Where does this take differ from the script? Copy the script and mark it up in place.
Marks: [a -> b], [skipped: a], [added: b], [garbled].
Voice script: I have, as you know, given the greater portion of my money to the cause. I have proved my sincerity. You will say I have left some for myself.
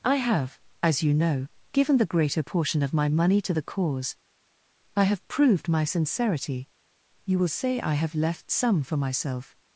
I have, as you know, given the greater portion of my money to the cause. I have proved my sincerity. You will say I have left some for myself.